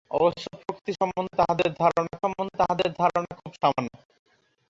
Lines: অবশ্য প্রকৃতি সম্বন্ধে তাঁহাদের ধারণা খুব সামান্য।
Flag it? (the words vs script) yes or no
yes